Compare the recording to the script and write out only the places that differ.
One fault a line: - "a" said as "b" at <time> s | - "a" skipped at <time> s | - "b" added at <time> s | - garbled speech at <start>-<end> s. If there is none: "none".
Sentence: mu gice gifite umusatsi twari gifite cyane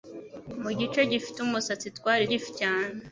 none